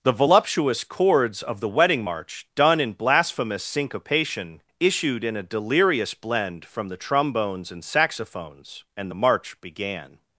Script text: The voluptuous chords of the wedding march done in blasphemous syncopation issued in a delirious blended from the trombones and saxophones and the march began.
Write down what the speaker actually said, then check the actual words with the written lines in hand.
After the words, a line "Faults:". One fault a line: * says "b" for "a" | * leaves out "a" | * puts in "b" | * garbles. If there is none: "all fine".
The voluptuous chords of the wedding march done in blasphemous syncopation issued in a delirious blend from the trombones and saxophones and the march began.
Faults:
* says "blend" for "blended"